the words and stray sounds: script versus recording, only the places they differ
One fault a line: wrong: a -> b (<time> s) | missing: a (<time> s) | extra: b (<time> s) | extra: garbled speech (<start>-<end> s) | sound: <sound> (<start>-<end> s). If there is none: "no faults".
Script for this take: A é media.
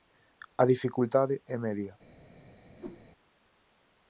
extra: dificultade (0.7 s)
sound: whoosh (2.8-3.1 s)